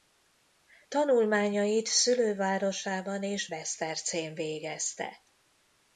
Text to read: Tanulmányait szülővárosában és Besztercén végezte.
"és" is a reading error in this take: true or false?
false